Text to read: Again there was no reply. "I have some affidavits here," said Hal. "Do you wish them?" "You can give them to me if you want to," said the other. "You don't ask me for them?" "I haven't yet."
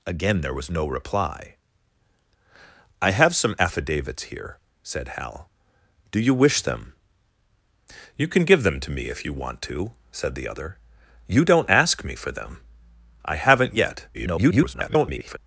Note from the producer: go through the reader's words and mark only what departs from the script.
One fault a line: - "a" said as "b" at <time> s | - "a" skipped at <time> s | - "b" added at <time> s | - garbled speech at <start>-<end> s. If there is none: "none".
- garbled speech at 14.1-15.4 s